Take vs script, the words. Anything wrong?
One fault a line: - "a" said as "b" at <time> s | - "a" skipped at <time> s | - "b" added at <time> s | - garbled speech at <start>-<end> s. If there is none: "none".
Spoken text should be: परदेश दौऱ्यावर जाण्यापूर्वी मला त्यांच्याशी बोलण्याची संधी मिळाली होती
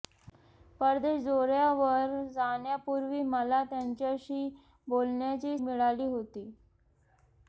- "संधी" skipped at 5.6 s